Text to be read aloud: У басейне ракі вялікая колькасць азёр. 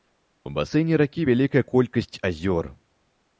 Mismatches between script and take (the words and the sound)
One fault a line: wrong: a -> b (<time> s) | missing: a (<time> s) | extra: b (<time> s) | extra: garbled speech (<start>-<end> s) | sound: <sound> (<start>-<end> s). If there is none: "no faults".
no faults